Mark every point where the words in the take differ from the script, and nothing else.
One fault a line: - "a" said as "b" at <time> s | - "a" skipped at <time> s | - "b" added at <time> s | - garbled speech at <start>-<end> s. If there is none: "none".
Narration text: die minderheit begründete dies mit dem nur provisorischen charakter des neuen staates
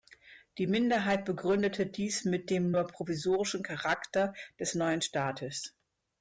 none